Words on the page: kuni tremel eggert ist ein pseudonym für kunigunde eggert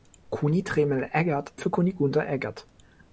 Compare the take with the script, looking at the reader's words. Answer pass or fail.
fail